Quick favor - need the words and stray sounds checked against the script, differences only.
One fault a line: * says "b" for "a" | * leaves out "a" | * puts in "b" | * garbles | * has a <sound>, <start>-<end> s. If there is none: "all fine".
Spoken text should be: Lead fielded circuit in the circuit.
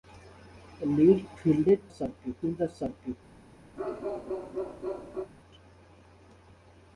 * has a bark, 3.8-5.3 s